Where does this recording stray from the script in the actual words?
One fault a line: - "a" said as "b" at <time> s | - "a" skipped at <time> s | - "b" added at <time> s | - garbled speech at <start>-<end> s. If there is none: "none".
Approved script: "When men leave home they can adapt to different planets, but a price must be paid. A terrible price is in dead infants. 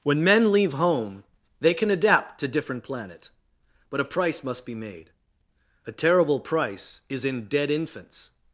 - "planets" said as "planet" at 2.8 s
- "paid" said as "made" at 4.7 s